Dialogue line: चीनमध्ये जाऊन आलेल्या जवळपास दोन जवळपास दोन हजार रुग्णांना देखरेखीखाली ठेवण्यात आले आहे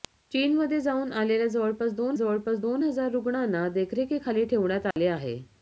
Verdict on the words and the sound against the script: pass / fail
fail